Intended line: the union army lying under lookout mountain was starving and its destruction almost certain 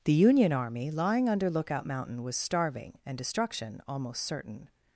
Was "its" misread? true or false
true